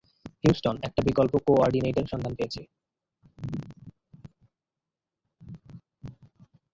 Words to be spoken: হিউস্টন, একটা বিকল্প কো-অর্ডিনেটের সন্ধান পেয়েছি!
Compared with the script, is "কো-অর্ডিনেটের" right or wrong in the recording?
right